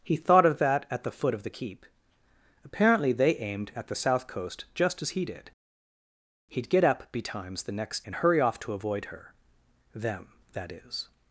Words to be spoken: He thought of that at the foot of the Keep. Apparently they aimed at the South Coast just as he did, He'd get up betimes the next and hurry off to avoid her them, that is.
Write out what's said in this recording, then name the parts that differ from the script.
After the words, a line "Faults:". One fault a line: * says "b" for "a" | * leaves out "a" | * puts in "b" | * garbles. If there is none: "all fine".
He thought of that at the foot of the Keep. Apparently they aimed at the South Coast just as he did, He'd get up betimes the next and hurry off to avoid her them, that is.
Faults:
all fine